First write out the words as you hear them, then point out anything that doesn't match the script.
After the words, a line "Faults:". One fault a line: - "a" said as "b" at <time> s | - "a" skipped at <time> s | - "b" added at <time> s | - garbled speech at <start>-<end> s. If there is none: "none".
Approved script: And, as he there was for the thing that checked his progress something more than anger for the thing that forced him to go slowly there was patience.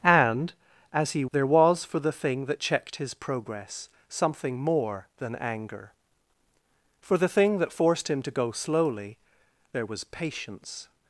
And, as he there was for the thing that checked his progress something more than anger for the thing that forced him to go slowly there was patience.
Faults:
none